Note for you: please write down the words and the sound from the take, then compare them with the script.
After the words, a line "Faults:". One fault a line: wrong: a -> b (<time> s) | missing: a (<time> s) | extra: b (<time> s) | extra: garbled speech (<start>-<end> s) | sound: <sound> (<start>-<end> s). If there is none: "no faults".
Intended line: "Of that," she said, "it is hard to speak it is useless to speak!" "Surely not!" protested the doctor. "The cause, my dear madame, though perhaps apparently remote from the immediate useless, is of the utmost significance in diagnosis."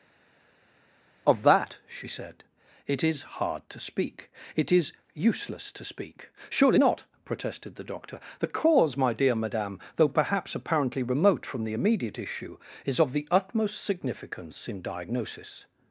"Of that," she said, "it is hard to speak it is useless to speak!" "Surely not!" protested the doctor. "The cause, my dear madame, though perhaps apparently remote from the immediate issue, is of the utmost significance in diagnosis."
Faults:
wrong: useless -> issue (12.2 s)